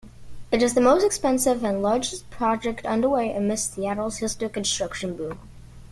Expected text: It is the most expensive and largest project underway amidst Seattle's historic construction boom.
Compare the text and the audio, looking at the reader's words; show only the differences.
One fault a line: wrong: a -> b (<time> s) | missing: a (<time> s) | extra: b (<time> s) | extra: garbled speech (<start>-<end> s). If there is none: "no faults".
no faults